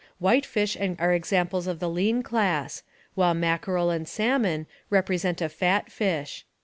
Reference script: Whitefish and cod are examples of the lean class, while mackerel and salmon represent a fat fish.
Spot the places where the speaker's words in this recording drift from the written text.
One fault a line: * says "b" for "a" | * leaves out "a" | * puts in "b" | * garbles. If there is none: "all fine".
* leaves out "cod"